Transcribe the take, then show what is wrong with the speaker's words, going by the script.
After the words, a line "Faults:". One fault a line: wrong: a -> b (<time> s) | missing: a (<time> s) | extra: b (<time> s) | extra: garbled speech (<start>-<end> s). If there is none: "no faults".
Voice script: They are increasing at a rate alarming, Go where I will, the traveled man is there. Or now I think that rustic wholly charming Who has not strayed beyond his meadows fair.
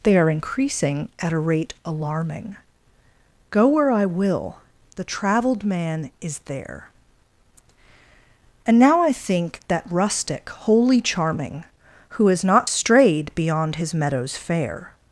They are increasing at a rate alarming, Go where I will, the traveled man is there. And now I think that rustic wholly charming Who has not strayed beyond his meadows fair.
Faults:
wrong: Or -> And (8.7 s)